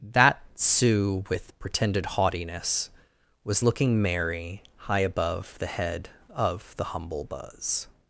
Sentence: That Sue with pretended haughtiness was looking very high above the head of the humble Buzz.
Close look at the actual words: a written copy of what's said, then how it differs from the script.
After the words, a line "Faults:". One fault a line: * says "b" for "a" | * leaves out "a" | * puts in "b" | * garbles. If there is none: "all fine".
That Sue with pretended haughtiness was looking merry high above the head of the humble Buzz.
Faults:
* says "merry" for "very"